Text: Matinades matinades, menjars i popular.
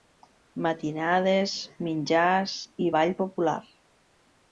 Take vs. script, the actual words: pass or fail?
fail